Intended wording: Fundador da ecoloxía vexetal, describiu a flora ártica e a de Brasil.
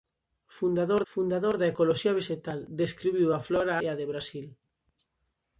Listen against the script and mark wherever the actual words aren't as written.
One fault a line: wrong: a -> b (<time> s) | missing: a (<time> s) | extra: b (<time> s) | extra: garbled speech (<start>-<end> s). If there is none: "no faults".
extra: fundador (1.1 s)
missing: ártica (3.8 s)